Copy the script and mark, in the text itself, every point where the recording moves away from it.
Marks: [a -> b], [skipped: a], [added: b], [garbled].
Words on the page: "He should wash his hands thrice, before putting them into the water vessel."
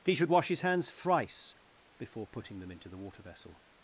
"He should wash his hands thrice, before putting them into the water vessel."